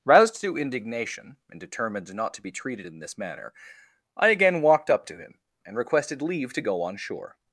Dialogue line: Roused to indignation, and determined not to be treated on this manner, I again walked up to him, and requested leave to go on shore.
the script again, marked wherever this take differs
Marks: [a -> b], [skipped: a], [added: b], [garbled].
Roused to indignation, and determined not to be treated [on -> in] this manner, I again walked up to him, and requested leave to go on shore.